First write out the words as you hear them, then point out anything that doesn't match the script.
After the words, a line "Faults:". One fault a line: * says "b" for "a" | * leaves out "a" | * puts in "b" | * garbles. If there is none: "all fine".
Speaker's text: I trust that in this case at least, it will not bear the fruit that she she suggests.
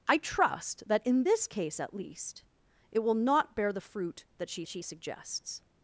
I trust that in this case at least, it will not bear the fruit that she she suggests.
Faults:
all fine